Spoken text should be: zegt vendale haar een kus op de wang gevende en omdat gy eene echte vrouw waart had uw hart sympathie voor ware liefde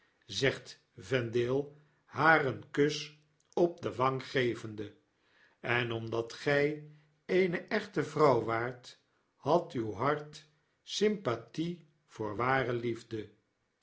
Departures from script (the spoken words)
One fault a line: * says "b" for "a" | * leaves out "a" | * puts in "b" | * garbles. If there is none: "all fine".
all fine